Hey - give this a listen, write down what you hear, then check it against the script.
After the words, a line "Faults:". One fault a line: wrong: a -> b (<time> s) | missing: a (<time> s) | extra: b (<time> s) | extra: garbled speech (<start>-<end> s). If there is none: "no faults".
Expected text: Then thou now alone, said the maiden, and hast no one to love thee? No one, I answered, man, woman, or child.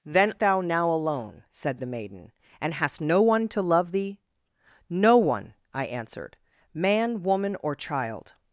Then thou now alone, said the maiden, and hast no one to love thee? No one, I answered, man, woman, or child.
Faults:
no faults